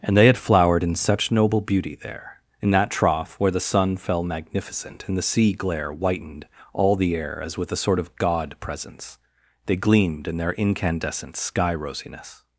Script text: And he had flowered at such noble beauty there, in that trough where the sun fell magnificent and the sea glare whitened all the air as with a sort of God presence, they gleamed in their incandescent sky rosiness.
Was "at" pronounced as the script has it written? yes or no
no